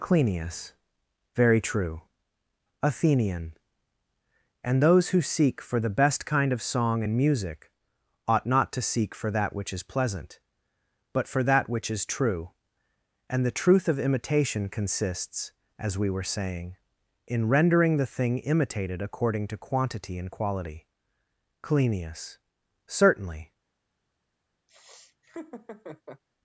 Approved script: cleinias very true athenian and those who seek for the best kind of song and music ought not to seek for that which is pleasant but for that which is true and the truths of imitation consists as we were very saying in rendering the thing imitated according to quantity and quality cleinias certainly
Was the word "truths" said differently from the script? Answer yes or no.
yes